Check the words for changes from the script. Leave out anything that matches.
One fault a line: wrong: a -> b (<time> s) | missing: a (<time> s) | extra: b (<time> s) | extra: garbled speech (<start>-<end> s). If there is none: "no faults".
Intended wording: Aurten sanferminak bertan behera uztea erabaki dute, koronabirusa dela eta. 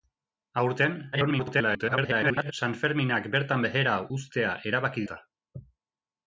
extra: garbled speech (1.1-2.5 s)
missing: dute koronabirusa dela (5.0 s)